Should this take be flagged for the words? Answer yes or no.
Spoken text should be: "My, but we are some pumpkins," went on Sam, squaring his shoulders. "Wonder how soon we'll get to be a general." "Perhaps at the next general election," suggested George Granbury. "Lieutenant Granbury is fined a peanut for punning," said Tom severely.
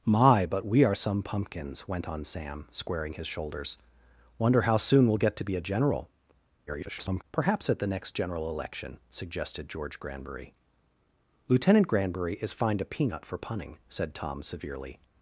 yes